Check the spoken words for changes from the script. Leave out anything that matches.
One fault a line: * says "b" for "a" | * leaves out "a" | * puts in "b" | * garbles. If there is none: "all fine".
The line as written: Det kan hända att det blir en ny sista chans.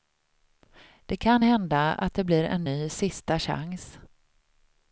all fine